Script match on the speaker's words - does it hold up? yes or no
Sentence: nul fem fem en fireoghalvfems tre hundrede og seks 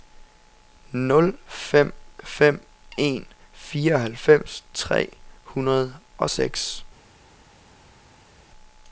yes